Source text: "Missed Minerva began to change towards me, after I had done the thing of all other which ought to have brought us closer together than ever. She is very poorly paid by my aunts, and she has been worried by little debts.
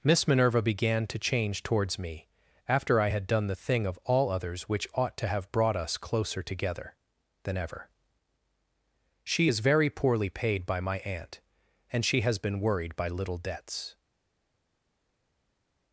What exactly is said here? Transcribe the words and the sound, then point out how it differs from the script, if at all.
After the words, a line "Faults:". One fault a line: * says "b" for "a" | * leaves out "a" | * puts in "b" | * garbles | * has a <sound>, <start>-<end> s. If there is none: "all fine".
"Miss Minerva began to change towards me, after I had done the thing of all others which ought to have brought us closer together than ever. She is very poorly paid by my aunt, and she has been worried by little debts.
Faults:
* says "Miss" for "Missed"
* says "others" for "other"
* says "aunt" for "aunts"